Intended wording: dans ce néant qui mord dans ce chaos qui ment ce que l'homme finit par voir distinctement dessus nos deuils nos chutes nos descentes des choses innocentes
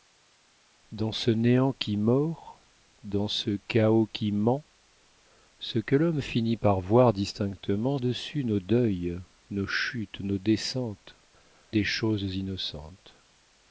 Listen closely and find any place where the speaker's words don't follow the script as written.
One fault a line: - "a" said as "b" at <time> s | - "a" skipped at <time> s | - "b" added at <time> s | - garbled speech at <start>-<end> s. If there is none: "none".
none